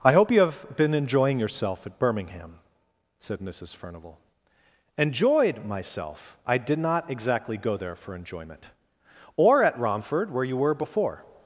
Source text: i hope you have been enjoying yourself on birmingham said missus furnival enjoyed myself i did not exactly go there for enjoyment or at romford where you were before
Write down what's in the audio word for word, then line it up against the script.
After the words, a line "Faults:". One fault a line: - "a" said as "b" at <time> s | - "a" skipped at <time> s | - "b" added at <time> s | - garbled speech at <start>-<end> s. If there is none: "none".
i hope you have been enjoying yourself at birmingham said missus furnival enjoyed myself i did not exactly go there for enjoyment or at romford where you were before
Faults:
- "on" said as "at" at 1.9 s